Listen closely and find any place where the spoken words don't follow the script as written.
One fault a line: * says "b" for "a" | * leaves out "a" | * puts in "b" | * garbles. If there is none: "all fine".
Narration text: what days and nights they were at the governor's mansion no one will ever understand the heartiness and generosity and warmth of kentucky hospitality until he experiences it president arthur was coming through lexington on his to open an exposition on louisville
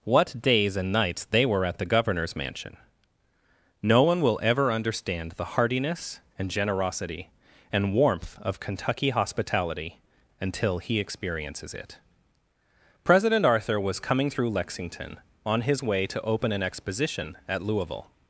* puts in "way"
* says "at" for "on"